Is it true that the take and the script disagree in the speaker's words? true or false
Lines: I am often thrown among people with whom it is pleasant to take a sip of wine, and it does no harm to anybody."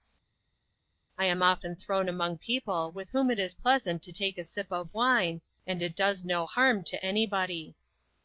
false